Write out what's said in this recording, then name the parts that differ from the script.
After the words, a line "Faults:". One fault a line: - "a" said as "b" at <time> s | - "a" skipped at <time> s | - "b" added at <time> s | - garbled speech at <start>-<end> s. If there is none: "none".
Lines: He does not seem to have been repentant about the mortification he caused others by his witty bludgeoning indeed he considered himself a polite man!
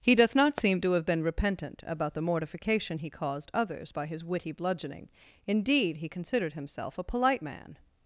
He doth not seem to have been repentant about the mortification he caused others by his witty bludgeoning indeed he considered himself a polite man!
Faults:
- "does" said as "doth" at 0.1 s